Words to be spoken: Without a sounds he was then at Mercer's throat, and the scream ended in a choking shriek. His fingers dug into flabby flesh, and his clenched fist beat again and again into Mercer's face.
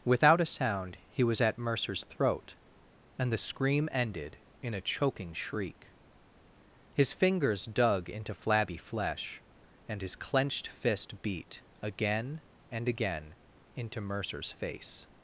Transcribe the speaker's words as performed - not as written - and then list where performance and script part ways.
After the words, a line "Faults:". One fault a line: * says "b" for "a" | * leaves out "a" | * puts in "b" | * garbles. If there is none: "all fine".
Without a sound he was at Mercer's throat, and the scream ended in a choking shriek. His fingers dug into flabby flesh, and his clenched fist beat again and again into Mercer's face.
Faults:
* says "sound" for "sounds"
* leaves out "then"